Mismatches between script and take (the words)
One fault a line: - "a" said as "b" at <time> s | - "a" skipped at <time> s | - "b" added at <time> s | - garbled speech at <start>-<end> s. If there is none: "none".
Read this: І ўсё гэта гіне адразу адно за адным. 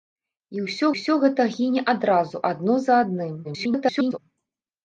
- "ўсё" added at 0.9 s
- garbled speech at 3.4-4.2 s